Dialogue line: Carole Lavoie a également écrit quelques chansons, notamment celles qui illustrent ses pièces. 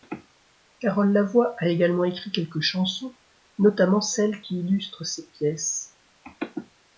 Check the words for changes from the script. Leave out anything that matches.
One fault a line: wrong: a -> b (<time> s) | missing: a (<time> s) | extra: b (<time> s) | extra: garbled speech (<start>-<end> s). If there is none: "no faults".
no faults